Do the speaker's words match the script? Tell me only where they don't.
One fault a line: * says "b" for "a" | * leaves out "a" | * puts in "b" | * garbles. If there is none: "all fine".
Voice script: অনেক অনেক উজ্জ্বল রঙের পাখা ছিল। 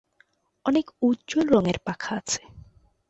* leaves out "অনেক"
* says "আছে" for "ছিল"